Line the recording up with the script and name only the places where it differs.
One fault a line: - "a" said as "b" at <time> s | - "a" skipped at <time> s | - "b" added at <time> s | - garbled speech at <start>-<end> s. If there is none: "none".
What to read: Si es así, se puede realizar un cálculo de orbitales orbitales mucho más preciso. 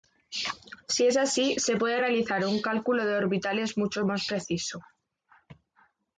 - "orbitales" skipped at 3.8 s